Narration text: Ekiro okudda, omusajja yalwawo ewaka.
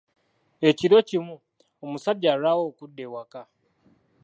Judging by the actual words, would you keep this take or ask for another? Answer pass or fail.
fail